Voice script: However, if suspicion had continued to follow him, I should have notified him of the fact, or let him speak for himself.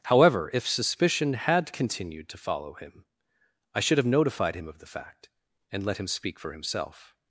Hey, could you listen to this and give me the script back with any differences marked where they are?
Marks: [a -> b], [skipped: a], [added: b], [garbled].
However, if suspicion had continued to follow him, I should have notified him of the fact, [or -> and] let him speak for himself.